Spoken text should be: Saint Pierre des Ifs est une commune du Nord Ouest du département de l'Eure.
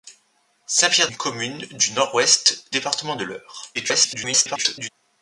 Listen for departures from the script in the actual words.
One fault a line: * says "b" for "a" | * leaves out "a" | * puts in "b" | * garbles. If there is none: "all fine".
* leaves out "des Ifs est"
* leaves out "du"
* garbles